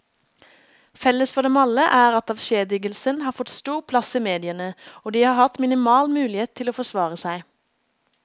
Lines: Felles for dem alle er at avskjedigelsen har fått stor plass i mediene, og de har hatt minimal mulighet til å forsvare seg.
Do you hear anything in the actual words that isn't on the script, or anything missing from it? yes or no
no